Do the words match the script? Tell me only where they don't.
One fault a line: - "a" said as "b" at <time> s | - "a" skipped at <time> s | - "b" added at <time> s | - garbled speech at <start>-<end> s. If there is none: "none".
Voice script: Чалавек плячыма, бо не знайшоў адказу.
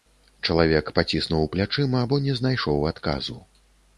- "паціснуў" added at 1.0 s